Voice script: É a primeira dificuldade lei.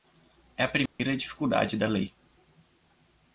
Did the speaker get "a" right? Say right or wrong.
right